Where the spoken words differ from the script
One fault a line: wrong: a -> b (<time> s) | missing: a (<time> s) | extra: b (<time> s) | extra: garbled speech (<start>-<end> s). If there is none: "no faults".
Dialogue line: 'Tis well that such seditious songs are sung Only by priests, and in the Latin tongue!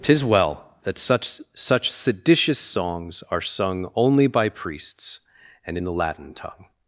extra: such (1.5 s)